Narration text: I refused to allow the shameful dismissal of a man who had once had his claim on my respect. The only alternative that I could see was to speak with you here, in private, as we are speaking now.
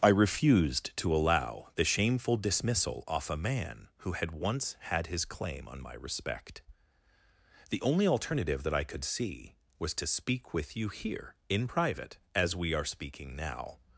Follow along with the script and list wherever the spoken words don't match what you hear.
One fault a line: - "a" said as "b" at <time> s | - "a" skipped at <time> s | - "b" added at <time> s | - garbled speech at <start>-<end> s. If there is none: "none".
- "of" said as "off" at 3.1 s